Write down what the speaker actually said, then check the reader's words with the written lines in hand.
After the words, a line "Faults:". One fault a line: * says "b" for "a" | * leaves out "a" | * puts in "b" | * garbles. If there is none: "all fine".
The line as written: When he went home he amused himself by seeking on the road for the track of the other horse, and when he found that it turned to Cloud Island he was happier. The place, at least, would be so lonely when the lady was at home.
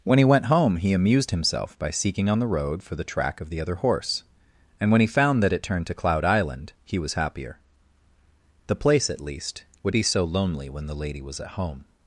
When he went home he amused himself by seeking on the road for the track of the other horse, and when he found that it turned to Cloud Island he was happier. The place, at least, would be so lonely when the lady was at home.
Faults:
all fine